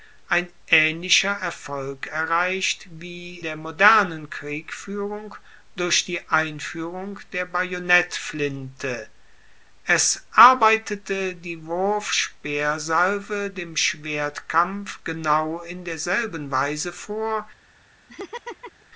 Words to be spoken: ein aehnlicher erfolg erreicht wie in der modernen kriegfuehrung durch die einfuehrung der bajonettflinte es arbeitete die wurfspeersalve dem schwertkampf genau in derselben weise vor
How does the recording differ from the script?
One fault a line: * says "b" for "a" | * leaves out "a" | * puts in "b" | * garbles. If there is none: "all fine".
* leaves out "in"